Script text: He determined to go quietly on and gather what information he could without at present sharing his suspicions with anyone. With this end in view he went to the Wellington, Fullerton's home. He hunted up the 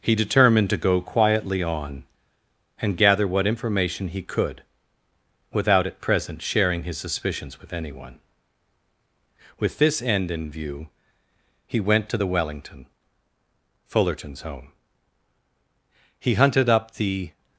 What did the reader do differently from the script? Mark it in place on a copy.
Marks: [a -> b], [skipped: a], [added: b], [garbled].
He determined to go quietly on and gather what information he could without at present sharing his suspicions with anyone. With this end in view he went to the Wellington, Fullerton's home. He hunted up the